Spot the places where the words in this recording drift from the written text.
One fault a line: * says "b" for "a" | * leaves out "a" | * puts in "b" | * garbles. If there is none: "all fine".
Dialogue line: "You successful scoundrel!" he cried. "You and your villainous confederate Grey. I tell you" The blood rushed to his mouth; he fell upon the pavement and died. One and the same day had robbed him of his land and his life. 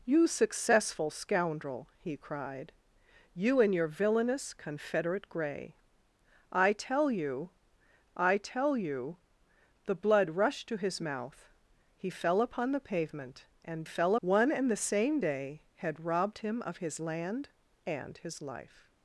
* puts in "I tell you"
* says "fell" for "died"